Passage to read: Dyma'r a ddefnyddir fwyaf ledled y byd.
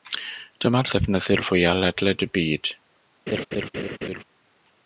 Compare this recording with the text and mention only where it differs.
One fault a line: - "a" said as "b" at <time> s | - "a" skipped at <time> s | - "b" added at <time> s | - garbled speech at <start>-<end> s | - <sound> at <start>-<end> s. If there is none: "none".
- laugh at 3.3-4.2 s